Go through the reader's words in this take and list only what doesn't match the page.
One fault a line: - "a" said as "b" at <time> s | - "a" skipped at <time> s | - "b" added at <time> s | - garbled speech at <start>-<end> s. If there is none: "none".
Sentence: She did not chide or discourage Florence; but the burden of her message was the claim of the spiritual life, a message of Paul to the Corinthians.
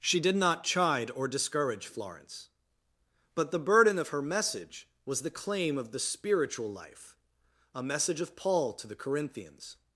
none